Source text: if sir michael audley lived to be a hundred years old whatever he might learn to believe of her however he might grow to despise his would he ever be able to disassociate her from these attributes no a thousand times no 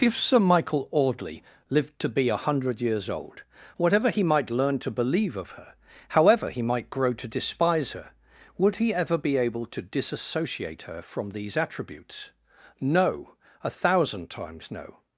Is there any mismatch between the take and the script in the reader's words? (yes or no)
yes